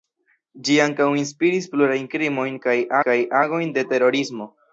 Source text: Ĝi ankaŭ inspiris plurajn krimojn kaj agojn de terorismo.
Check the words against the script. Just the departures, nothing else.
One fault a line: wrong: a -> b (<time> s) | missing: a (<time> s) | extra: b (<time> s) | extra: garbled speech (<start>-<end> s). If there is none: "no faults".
extra: kaj (3.1 s)